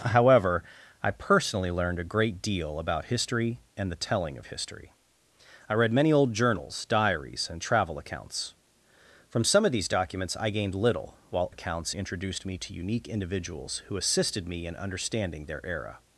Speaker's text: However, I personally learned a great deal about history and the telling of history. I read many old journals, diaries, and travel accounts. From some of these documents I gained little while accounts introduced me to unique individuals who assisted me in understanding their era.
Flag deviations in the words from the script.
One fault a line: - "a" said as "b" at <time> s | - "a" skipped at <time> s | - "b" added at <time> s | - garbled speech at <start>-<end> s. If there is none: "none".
none